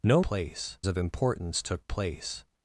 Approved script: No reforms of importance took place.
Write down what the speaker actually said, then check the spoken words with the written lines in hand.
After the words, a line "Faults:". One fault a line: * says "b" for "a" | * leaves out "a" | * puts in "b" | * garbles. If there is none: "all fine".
No place of importance took place.
Faults:
* says "place" for "reforms"